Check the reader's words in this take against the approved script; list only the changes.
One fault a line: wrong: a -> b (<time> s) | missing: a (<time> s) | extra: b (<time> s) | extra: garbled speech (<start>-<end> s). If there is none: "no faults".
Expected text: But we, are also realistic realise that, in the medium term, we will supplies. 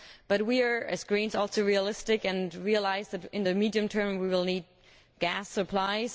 extra: as Greens (0.6 s)
extra: and (2.2 s)
extra: need gas (4.4 s)